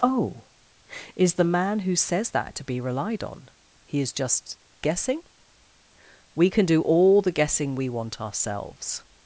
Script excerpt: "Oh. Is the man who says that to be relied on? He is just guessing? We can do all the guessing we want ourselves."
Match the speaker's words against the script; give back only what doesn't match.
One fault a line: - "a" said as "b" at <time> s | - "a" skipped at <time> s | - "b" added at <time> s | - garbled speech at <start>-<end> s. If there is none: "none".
none